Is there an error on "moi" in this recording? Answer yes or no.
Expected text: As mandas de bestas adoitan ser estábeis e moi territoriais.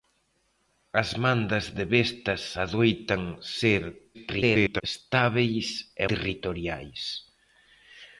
yes